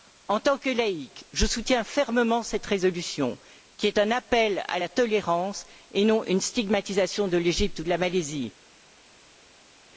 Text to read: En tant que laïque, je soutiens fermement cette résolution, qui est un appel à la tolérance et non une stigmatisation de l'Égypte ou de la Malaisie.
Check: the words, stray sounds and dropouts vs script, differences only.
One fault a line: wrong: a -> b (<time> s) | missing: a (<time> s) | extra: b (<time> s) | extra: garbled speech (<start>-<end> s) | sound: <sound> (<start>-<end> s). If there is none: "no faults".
no faults